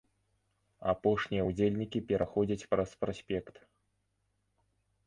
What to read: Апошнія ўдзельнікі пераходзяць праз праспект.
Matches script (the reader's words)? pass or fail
pass